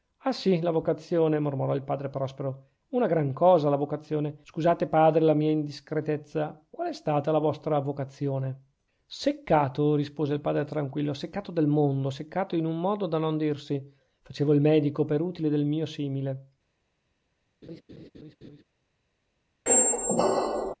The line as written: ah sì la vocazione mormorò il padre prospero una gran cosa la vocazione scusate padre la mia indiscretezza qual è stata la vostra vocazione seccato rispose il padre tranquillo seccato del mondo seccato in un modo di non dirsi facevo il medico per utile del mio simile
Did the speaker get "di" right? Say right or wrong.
wrong